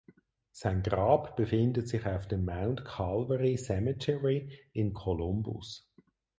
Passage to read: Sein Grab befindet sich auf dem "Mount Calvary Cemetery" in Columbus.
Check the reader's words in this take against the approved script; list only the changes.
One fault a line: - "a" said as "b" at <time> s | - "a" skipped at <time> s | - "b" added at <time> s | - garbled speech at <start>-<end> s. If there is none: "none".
none